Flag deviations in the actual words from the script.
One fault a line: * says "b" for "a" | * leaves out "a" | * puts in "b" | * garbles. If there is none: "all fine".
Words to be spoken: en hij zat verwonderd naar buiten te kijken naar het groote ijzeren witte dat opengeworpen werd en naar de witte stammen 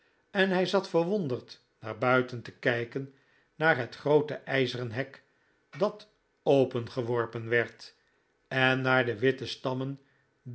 * says "hek" for "witte"